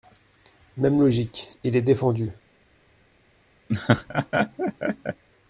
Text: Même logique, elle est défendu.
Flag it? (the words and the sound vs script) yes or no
yes